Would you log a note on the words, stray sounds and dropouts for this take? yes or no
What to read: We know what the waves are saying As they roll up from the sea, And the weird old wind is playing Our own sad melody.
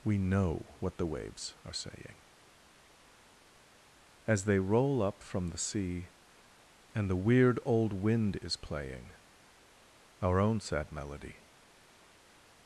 no